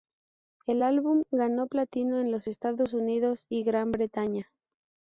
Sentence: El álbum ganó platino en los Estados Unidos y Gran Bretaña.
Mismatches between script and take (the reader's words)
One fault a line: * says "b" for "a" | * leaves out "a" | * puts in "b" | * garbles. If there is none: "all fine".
all fine